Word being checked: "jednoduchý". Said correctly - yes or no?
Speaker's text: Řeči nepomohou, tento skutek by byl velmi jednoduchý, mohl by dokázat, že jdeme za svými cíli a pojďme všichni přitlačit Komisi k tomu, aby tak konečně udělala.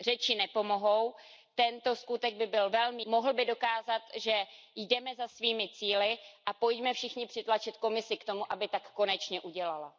no